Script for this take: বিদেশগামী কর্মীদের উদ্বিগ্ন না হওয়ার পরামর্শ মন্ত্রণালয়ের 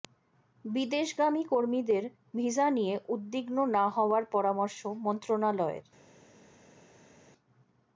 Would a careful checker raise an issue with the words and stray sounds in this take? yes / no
yes